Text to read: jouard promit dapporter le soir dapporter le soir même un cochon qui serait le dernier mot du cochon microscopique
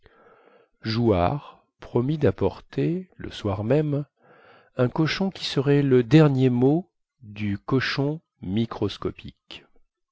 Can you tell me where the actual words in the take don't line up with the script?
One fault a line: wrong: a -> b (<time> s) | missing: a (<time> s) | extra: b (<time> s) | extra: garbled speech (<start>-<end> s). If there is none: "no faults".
missing: dapporter le soir (3.6 s)